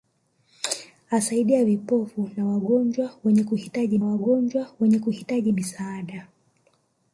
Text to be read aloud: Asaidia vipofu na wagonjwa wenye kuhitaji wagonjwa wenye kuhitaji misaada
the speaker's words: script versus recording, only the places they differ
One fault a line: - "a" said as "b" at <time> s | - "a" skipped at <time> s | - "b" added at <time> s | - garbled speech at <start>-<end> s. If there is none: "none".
none